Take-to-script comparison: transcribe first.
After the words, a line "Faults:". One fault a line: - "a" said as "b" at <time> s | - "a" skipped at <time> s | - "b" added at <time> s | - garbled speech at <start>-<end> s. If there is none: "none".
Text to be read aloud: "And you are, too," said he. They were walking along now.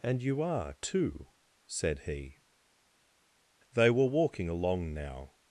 "And you are, too," said he. They were walking along now.
Faults:
none